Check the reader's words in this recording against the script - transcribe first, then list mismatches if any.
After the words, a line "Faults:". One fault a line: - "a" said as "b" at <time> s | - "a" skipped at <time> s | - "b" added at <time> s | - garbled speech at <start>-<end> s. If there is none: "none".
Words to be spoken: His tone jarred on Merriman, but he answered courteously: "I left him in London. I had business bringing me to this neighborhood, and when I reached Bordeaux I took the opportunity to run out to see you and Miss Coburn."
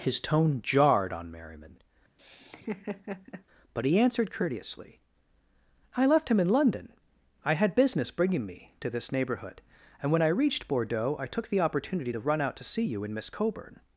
His tone jarred on Merriman, but he answered courteously: "I left him in London. I had business bringing me to this neighborhood, and when I reached Bordeaux I took the opportunity to run out to see you and Miss Coburn."
Faults:
none